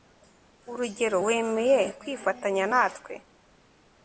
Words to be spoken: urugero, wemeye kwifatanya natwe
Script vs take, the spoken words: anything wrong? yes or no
no